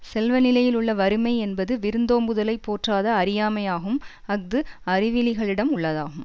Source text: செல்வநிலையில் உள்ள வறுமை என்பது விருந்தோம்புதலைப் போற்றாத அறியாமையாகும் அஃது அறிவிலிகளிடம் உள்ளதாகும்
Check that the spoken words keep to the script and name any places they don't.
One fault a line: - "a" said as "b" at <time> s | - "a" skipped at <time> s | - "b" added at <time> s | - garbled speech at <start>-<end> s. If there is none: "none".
none